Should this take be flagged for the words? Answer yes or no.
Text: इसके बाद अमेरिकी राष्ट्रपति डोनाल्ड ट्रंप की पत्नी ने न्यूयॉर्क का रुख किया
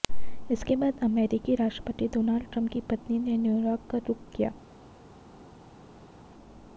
no